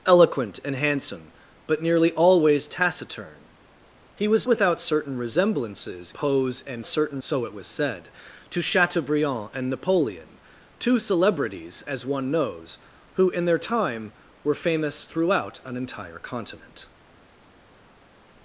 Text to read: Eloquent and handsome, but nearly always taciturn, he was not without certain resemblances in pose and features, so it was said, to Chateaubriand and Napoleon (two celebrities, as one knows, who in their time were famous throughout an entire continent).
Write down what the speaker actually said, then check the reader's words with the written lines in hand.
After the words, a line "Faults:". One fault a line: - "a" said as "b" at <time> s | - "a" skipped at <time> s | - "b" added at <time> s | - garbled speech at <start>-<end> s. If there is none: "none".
Eloquent and handsome, but nearly always taciturn, he was without certain resemblances pose and certain, so it was said, to Chateaubriand and Napoleon (two celebrities, as one knows, who in their time were famous throughout an entire continent).
Faults:
- "not" skipped at 4.5 s
- "in" skipped at 6.1 s
- "features" said as "certain" at 6.9 s